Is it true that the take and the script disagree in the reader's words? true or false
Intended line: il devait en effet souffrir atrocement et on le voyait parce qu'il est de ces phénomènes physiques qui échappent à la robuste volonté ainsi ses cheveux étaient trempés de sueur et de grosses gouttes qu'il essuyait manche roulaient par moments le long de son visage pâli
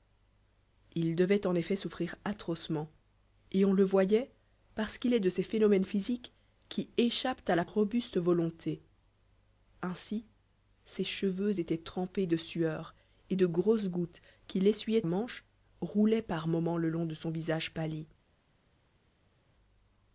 false